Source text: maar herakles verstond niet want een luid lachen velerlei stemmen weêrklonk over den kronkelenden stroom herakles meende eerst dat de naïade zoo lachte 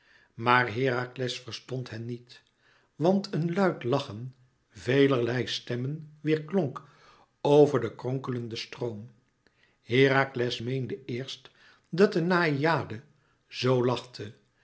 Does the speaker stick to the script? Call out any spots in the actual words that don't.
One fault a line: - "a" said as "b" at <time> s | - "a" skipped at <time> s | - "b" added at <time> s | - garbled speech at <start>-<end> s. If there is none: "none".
- "hen" added at 1.9 s